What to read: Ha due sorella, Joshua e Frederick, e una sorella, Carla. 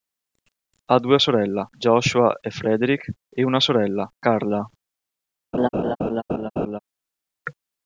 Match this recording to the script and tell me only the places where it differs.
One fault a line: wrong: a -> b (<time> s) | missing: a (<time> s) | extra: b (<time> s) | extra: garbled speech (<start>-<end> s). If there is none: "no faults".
no faults